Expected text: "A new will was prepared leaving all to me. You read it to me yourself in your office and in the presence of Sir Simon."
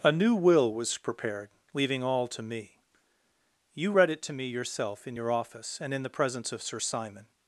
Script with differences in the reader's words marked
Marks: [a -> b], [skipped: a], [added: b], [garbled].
"A new will was prepared leaving all to me. You read it to me yourself in your office and in the presence of Sir Simon."